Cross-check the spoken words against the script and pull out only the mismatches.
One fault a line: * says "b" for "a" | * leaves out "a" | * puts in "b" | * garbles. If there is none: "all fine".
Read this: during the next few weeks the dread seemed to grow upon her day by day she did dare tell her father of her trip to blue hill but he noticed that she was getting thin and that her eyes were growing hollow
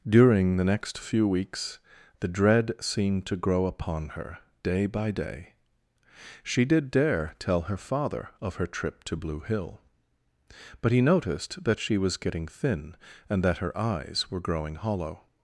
all fine